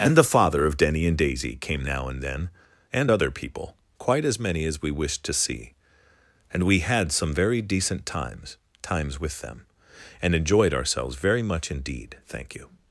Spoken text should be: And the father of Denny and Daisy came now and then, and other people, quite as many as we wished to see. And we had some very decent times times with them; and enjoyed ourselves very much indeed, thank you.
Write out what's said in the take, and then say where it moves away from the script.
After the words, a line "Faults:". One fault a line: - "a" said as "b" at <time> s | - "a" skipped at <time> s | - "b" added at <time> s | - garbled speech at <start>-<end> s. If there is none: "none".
And the father of Denny and Daisy came now and then, and other people, quite as many as we wished to see. And we had some very decent times times with them; and enjoyed ourselves very much indeed, thank you.
Faults:
none